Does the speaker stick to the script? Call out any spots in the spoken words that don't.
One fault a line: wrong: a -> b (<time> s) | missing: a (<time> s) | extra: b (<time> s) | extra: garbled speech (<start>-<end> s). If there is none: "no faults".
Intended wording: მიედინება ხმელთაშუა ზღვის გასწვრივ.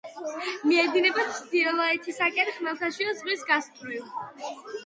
extra: ჩრდილოეთისაკენ (1.4 s)